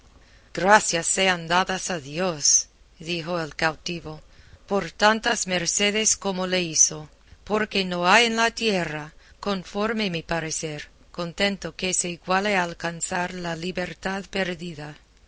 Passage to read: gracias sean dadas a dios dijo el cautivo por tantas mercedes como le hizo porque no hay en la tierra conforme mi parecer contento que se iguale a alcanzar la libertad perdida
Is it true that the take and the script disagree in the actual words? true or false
false